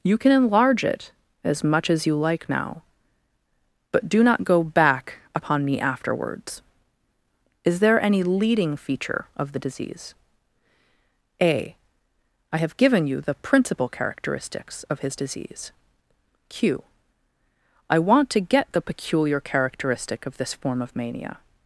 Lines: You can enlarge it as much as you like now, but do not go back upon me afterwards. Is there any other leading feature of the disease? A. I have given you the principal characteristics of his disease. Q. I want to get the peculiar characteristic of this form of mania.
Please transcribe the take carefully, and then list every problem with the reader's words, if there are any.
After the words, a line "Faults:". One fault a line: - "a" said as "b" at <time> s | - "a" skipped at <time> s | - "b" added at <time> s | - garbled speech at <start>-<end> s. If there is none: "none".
You can enlarge it as much as you like now, but do not go back upon me afterwards. Is there any leading feature of the disease? A. I have given you the principal characteristics of his disease. Q. I want to get the peculiar characteristic of this form of mania.
Faults:
- "other" skipped at 8.2 s